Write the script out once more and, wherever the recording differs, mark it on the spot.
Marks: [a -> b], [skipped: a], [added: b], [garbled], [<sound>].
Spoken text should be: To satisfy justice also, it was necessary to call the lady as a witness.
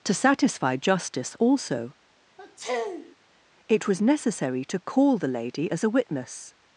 To satisfy justice also, [sniff] it was necessary to call the lady as a witness.